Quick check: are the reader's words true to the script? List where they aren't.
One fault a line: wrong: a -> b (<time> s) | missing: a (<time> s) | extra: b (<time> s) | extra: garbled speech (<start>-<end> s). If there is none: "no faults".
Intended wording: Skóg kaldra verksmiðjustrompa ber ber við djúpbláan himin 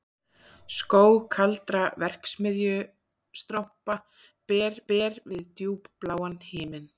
no faults